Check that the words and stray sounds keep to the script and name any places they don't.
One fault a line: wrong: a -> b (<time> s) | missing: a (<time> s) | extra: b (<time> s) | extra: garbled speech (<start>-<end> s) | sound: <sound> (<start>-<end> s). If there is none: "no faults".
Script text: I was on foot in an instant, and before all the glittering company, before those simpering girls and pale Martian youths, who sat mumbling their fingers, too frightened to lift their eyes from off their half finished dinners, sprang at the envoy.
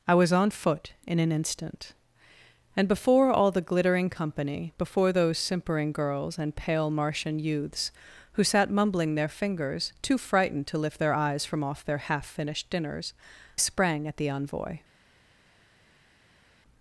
no faults